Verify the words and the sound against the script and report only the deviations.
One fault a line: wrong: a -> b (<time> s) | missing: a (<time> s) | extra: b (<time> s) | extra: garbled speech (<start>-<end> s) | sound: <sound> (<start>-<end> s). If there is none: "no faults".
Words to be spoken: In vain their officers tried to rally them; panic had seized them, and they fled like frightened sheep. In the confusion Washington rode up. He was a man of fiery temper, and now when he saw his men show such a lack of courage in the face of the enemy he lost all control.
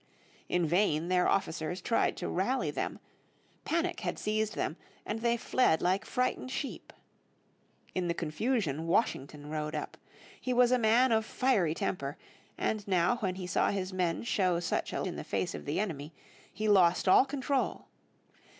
missing: lack of courage (15.0 s)